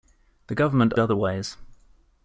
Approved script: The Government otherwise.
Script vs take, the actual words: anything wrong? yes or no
no